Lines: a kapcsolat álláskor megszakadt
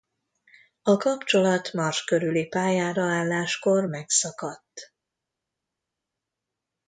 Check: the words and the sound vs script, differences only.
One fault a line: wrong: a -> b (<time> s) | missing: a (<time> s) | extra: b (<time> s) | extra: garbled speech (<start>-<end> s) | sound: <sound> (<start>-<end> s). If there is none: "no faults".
extra: mars körüli pályára (1.7 s)